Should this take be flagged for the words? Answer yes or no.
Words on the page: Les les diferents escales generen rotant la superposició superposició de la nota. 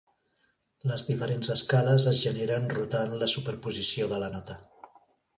yes